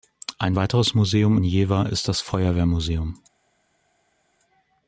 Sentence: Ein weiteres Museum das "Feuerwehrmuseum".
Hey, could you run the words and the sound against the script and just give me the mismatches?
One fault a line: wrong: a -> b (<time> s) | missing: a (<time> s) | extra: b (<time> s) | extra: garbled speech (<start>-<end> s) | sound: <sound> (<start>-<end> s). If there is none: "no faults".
extra: in Jever ist (1.3 s)